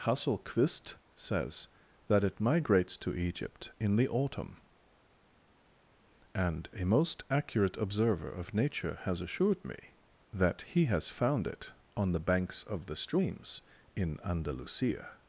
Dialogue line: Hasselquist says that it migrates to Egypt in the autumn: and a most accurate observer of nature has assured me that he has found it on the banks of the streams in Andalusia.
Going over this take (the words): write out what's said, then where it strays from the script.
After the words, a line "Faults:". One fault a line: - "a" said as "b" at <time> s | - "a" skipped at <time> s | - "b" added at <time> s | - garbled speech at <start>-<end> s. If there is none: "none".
Hasselquist says that it migrates to Egypt in the autumn: and a most accurate observer of nature has assured me that he has found it on the banks of the streams in Andalusia.
Faults:
none